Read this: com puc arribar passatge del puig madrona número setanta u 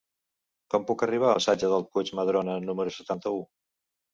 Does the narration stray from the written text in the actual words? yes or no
no